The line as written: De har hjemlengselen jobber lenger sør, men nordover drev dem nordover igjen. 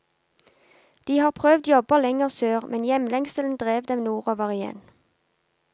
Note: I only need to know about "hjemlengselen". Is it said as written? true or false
false